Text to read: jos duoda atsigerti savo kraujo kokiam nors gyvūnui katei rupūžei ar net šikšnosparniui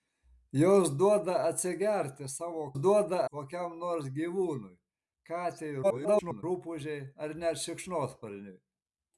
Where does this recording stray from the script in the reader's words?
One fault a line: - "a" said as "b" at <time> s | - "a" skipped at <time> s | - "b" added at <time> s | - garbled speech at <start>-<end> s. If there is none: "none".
- "kraujo" said as "duoda" at 2.8 s
- garbled speech at 5.8-6.4 s